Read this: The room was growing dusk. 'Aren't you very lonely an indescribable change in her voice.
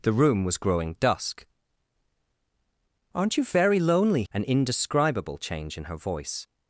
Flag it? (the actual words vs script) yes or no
no